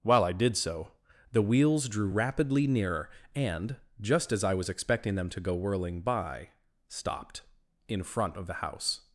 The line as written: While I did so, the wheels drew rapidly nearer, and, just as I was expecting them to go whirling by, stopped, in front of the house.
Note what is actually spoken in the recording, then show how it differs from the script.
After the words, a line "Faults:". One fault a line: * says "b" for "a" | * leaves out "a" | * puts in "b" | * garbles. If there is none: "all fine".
While I did so, the wheels drew rapidly nearer, and, just as I was expecting them to go whirling by, stopped, in front of the house.
Faults:
all fine